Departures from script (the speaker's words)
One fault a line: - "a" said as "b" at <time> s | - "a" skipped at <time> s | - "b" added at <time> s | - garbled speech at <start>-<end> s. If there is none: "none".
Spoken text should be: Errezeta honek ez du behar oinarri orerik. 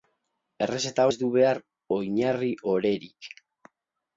- "honek" skipped at 1.1 s